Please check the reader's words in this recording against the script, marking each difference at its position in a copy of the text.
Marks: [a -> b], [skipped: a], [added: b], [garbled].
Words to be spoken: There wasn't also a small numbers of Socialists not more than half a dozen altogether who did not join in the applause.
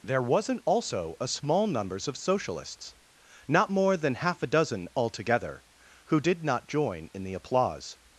There wasn't also a small numbers of Socialists not more than half a dozen altogether who did not join in the applause.